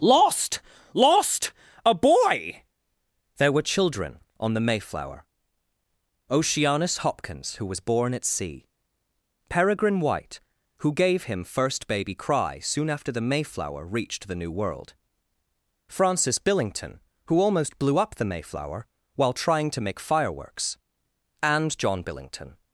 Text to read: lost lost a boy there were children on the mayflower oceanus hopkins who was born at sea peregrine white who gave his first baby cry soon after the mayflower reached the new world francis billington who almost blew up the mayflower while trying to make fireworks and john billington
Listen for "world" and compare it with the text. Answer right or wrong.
right